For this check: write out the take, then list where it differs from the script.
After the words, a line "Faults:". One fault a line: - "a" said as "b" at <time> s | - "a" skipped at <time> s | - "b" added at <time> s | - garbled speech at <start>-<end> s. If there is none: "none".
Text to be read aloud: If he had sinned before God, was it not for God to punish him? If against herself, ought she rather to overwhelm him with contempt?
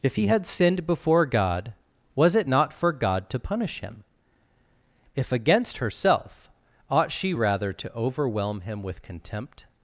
If he had sinned before God, was it not for God to punish him? If against herself, ought she rather to overwhelm him with contempt?
Faults:
none